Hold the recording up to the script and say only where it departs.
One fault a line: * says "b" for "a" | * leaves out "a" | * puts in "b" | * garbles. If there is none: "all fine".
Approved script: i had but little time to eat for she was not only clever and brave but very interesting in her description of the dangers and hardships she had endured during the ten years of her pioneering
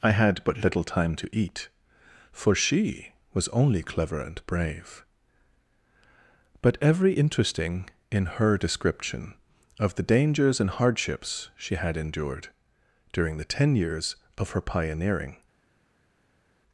* leaves out "not"
* says "every" for "very"